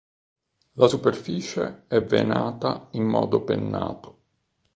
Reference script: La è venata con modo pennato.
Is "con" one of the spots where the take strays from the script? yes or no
yes